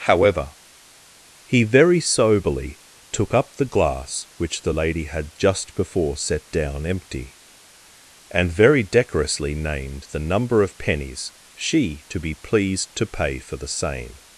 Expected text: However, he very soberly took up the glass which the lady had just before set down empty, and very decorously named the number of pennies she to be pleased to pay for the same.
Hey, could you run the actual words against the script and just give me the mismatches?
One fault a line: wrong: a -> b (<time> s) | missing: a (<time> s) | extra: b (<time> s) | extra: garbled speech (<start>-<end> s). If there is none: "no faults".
no faults